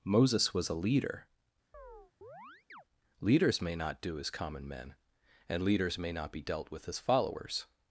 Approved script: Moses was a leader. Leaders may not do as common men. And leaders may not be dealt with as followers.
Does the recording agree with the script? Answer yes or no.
yes